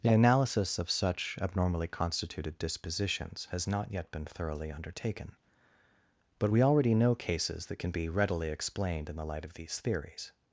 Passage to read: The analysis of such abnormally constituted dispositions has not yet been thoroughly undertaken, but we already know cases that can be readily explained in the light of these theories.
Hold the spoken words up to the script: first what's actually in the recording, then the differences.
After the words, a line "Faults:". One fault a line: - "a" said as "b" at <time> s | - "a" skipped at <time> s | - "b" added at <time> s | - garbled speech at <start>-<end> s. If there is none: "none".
The analysis of such abnormally constituted dispositions has not yet been thoroughly undertaken, but we already know cases that can be readily explained in the light of these theories.
Faults:
none